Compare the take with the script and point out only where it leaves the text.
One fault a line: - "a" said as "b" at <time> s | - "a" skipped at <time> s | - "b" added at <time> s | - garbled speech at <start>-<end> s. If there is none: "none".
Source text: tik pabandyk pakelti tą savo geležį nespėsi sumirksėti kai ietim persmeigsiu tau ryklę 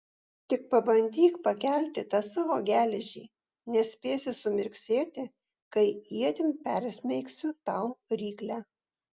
none